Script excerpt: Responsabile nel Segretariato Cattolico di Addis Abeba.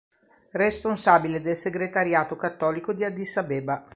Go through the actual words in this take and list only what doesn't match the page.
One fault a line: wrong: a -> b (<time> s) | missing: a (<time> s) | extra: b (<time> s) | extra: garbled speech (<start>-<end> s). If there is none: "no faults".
wrong: nel -> del (1.4 s)